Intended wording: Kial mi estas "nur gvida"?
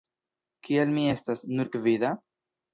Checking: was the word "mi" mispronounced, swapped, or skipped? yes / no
no